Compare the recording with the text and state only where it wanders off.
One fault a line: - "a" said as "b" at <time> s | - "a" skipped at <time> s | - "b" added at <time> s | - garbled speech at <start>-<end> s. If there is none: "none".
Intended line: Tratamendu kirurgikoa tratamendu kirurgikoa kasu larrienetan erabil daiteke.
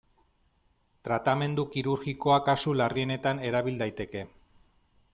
- "tratamendu kirurgikoa" skipped at 2.4 s